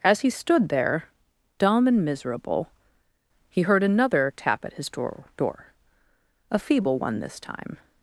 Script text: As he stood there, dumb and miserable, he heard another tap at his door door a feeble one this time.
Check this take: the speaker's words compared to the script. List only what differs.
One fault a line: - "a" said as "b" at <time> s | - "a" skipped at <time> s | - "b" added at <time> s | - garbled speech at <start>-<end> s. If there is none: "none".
none